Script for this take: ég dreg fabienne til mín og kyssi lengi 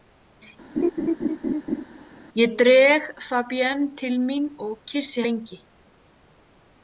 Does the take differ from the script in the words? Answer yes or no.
no